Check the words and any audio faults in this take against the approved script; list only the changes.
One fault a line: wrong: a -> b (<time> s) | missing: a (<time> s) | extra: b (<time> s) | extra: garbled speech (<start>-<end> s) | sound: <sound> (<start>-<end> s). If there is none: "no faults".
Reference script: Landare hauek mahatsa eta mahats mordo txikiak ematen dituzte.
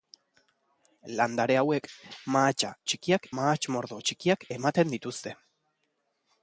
wrong: eta -> txikiak (2.9 s)